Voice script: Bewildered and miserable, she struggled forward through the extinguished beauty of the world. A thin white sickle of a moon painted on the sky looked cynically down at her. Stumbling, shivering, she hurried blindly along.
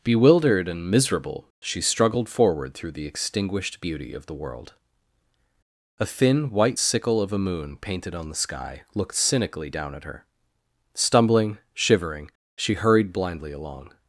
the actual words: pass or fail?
pass